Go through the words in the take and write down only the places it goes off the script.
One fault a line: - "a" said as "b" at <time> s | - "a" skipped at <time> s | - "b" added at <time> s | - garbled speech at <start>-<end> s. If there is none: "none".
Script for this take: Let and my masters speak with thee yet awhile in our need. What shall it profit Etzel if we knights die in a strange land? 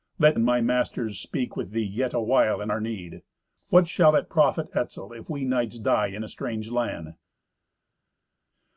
none